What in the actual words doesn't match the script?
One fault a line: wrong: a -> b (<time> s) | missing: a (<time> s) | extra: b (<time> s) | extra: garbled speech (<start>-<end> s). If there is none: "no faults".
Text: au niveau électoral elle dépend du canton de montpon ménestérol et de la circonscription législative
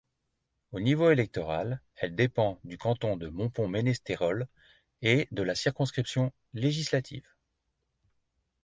no faults